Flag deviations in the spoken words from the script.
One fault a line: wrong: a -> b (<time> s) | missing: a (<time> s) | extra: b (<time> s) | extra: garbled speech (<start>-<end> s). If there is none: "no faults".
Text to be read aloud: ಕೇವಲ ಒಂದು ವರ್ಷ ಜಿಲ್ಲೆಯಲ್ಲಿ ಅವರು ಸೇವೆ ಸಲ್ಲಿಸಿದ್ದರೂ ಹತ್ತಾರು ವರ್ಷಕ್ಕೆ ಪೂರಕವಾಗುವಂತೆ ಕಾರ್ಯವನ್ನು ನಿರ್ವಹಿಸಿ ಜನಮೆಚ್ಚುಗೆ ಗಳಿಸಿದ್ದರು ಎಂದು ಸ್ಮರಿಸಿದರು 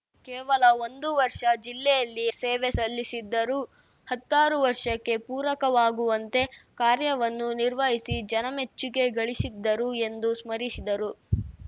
missing: ಅವರು (2.2 s)